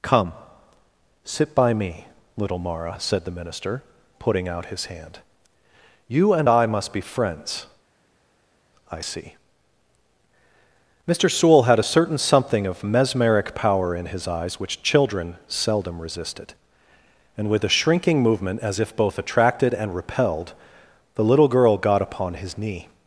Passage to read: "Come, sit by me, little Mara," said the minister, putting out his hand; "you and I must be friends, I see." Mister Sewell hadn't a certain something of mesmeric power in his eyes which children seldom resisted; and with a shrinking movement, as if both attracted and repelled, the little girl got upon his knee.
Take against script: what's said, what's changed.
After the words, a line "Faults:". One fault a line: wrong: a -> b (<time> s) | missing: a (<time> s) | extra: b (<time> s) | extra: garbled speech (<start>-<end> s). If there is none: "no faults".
"Come, sit by me, little Mara," said the minister, putting out his hand; "you and I must be friends, I see." Mister Sewell had a certain something of mesmeric power in his eyes which children seldom resisted; and with a shrinking movement, as if both attracted and repelled, the little girl got upon his knee.
Faults:
wrong: hadn't -> had (11.6 s)